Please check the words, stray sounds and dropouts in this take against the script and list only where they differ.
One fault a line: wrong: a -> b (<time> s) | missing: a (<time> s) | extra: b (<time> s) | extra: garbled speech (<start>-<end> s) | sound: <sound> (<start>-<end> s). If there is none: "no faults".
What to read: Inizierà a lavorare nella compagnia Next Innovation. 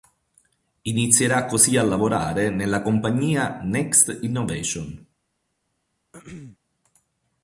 extra: così (1.4 s)
sound: throat clearing (6.1-6.6 s)